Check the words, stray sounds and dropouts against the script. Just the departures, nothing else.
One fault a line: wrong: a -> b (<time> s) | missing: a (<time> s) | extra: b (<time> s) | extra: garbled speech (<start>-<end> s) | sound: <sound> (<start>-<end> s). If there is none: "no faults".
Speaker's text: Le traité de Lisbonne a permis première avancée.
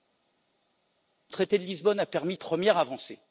no faults